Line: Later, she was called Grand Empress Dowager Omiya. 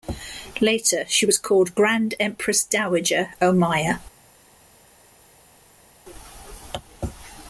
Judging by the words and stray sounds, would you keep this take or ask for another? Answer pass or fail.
pass